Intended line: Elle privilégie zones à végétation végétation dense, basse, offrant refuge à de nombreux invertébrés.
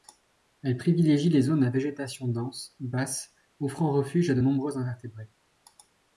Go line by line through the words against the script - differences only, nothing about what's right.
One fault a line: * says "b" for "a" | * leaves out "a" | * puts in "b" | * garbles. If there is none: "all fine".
* puts in "les"
* leaves out "végétation"